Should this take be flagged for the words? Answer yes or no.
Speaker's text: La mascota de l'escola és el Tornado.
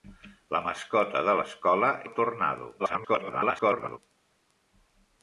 yes